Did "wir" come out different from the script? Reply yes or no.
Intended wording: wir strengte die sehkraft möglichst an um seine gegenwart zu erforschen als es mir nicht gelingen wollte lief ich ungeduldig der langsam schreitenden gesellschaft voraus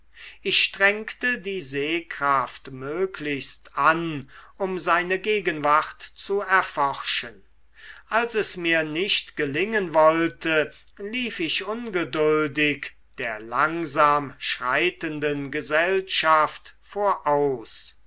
yes